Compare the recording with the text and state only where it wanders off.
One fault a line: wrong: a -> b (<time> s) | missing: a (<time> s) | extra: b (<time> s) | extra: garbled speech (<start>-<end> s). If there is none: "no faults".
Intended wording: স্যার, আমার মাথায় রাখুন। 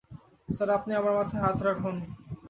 extra: আপনি (0.8 s)
extra: হাত (1.4 s)